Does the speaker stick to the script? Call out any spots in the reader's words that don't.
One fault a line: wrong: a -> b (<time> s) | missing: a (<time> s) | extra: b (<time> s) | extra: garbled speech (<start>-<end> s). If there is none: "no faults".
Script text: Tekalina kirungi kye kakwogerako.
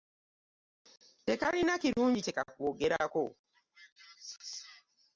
no faults